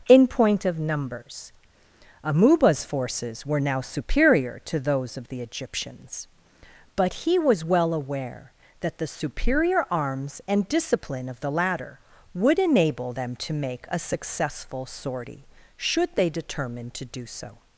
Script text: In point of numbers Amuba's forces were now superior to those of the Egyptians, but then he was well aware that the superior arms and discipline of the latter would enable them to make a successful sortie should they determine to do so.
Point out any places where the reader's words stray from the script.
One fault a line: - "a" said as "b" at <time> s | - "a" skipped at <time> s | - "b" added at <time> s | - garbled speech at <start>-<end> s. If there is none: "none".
- "then" skipped at 7.1 s